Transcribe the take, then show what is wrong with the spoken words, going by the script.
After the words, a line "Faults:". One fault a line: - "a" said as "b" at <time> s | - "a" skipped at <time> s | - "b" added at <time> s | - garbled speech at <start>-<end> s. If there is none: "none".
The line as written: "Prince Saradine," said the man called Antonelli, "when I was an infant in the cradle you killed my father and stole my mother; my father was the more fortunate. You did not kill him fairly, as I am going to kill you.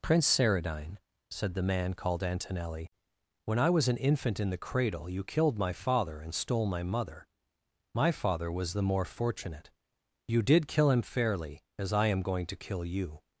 "Prince Saradine," said the man called Antonelli, "when I was an infant in the cradle you killed my father and stole my mother; my father was the more fortunate. You did kill him fairly, as I am going to kill you.
Faults:
- "not" skipped at 10.7 s